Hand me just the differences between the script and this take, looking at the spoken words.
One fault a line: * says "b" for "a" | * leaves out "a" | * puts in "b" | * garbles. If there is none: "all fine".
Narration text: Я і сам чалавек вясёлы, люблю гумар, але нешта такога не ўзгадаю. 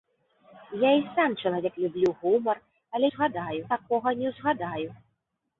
* leaves out "вясёлы"
* says "ўзгадаю" for "нешта"